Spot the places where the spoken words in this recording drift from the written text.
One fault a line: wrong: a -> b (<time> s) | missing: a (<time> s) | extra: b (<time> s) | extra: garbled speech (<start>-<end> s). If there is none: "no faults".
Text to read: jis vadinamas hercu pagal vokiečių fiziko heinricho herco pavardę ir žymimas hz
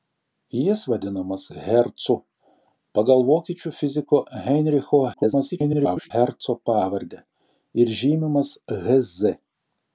extra: garbled speech (5.1-6.1 s)